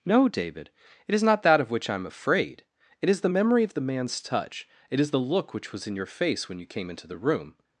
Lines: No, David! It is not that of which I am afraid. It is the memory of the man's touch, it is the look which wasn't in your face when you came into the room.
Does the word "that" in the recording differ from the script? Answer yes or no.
no